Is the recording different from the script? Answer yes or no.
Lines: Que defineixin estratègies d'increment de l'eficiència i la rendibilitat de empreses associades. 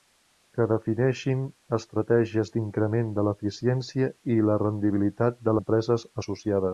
no